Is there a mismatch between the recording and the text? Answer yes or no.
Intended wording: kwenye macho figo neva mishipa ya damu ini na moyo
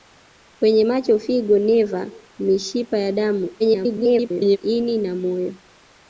yes